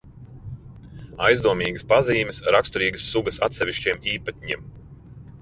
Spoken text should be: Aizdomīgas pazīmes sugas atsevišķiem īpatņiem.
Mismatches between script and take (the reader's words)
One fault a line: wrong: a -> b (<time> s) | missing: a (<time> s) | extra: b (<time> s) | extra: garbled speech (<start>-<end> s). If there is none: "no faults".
extra: raksturīgas (2.6 s)